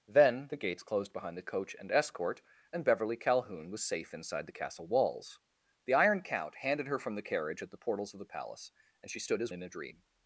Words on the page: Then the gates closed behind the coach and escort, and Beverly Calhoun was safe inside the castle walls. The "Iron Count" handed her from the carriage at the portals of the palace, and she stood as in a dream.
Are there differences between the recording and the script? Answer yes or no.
no